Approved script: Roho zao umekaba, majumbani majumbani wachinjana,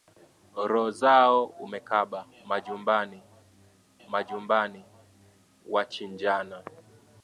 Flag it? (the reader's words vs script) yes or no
no